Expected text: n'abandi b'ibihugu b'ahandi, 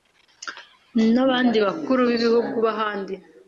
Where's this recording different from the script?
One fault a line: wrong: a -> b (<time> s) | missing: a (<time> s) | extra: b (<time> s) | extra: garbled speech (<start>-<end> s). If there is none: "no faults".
extra: bakuru (1.6 s)